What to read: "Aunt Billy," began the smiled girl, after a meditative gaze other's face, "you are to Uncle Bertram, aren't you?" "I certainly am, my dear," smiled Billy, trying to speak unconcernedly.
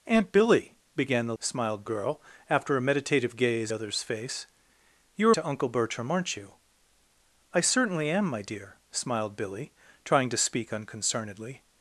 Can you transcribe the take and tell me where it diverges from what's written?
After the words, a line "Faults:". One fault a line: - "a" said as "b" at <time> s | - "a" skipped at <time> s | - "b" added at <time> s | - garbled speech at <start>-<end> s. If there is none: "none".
"Aunt Billy," began the smiled girl, after a meditative gaze other's face, "you are to Uncle Bertram, aren't you?" "I certainly am, my dear," smiled Billy, trying to speak unconcernedly.
Faults:
none